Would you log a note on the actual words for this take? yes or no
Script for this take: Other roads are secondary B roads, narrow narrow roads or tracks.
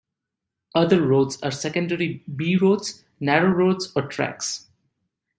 yes